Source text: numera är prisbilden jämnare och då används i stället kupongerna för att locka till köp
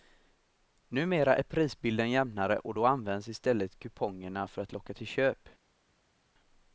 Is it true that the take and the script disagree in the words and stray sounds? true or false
false